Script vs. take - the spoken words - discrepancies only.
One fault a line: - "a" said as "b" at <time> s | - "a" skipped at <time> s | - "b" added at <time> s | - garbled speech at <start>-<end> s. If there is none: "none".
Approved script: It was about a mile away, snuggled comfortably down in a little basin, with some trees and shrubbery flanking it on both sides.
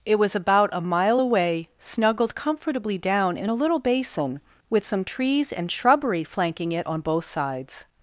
none